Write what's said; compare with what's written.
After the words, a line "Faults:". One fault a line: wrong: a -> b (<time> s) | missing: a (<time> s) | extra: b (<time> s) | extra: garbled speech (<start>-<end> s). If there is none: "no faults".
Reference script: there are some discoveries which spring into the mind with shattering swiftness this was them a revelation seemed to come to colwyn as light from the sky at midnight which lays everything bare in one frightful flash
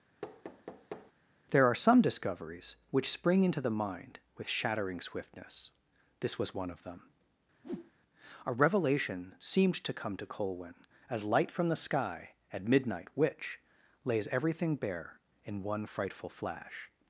there are some discoveries which spring into the mind with shattering swiftness this was one of them a revelation seemed to come to colwyn as light from the sky at midnight which lays everything bare in one frightful flash
Faults:
extra: one of (6.5 s)